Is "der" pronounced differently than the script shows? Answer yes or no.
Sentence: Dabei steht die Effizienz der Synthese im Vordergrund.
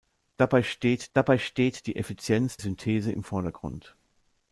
yes